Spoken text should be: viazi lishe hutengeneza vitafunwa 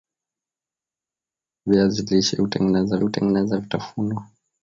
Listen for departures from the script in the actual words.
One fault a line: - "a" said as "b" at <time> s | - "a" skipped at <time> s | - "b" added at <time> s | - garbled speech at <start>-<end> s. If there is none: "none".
- "hutengeneza" added at 3.0 s